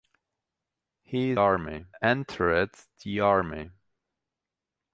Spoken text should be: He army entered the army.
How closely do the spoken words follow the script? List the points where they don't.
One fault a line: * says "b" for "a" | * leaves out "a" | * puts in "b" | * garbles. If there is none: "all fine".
all fine